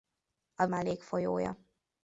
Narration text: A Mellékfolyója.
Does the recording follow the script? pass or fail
pass